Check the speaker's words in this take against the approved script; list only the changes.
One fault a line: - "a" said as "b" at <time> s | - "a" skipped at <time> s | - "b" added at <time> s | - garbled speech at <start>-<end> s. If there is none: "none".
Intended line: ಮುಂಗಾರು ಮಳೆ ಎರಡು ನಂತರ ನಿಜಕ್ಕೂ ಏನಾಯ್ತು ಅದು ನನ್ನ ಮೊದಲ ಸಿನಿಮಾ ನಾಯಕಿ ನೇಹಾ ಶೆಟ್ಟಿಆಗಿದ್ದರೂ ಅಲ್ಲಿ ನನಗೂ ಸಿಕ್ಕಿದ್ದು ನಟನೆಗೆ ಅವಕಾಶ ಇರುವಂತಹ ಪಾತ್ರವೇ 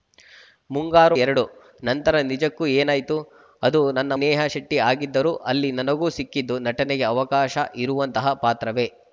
- "ಮಳೆ" skipped at 1.1 s
- "ಮೊದಲ ಸಿನಿಮಾ ನಾಯಕಿ" skipped at 4.1 s